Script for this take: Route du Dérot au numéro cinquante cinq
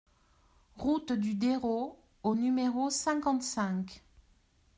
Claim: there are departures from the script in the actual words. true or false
false